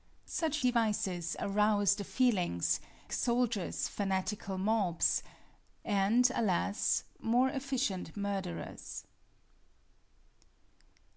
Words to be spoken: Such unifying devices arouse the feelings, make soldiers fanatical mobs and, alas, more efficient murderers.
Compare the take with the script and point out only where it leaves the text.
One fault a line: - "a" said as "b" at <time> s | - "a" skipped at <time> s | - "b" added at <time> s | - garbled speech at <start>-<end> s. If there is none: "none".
- "unifying" skipped at 0.6 s
- "make" skipped at 2.8 s